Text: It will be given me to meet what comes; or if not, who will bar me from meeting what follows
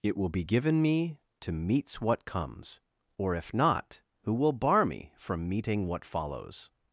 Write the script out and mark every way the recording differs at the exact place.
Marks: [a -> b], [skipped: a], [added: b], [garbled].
It will be given me to [meet -> meets] what comes; or if not, who will bar me from meeting what follows